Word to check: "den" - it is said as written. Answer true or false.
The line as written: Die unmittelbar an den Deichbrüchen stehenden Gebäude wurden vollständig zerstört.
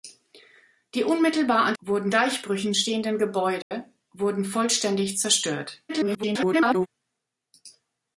false